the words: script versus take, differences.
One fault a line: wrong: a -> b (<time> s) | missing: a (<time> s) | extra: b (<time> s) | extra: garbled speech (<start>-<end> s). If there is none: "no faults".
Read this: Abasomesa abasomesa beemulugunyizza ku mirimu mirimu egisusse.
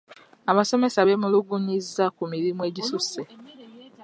missing: abasomesa (1.1 s)
missing: mirimu (2.6 s)